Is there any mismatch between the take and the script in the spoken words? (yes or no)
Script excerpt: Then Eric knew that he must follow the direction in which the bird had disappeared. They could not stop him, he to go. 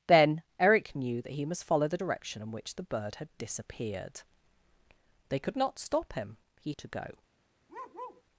no